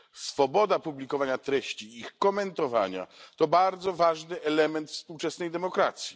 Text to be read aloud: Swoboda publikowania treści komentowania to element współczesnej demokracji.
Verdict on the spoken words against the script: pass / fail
fail